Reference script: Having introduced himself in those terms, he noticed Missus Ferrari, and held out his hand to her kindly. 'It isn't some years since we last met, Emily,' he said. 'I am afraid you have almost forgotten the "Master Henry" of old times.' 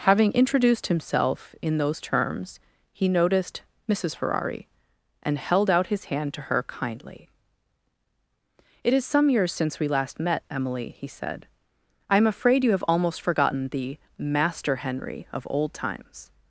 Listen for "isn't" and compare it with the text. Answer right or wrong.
wrong